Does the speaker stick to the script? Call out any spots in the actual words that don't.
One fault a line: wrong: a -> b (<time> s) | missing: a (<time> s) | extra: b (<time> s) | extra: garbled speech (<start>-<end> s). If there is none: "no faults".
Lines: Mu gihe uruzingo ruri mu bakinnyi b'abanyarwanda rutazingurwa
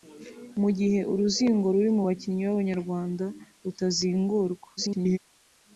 extra: garbled speech (4.8-5.2 s)